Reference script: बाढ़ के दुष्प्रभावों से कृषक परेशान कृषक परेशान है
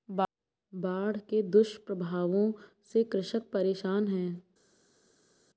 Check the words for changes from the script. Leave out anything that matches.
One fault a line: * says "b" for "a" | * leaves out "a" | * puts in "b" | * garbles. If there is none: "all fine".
* leaves out "कृषक परेशान"